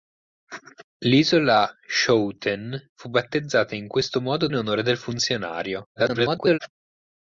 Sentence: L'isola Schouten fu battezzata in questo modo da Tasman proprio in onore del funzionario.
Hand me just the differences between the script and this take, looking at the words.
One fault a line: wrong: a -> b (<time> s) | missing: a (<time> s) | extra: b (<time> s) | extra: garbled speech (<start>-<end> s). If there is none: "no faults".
missing: da Tasman proprio (4.5 s)
extra: garbled speech (6.0-6.6 s)